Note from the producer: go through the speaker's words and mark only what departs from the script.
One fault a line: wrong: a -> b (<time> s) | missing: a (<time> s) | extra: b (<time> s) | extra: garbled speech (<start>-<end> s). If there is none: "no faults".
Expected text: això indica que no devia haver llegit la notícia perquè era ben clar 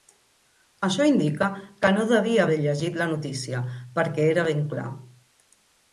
no faults